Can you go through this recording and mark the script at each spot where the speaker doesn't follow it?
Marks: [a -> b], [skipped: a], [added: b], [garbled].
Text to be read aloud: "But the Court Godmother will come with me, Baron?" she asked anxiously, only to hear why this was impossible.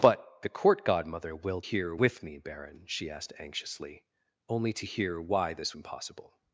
"But the Court Godmother will [come -> hear] with me, Baron?" she asked anxiously, only to hear why this [skipped: was] impossible.